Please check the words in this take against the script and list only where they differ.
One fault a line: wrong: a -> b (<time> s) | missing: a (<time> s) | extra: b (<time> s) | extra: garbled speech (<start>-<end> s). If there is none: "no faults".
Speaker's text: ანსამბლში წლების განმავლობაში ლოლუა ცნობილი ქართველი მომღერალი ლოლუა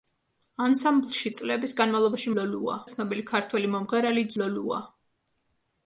no faults